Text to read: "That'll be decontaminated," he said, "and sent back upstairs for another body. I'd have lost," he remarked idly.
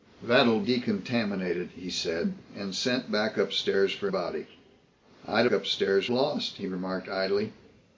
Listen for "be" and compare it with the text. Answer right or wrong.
wrong